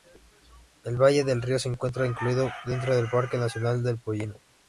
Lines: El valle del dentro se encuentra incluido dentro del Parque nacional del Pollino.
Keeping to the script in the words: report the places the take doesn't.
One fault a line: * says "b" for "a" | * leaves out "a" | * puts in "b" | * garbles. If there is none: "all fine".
* says "río" for "dentro"